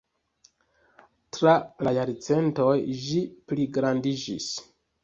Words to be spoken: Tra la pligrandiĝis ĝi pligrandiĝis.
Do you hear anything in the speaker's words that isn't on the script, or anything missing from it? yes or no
yes